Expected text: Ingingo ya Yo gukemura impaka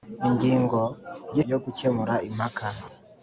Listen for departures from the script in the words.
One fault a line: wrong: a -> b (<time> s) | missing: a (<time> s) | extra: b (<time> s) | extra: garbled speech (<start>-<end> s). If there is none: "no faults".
no faults